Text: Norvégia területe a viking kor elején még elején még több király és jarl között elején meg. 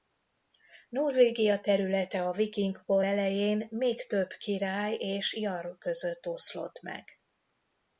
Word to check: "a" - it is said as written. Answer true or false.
true